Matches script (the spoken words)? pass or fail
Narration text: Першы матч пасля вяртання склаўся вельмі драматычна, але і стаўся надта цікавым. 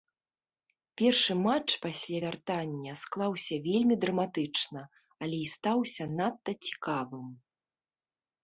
pass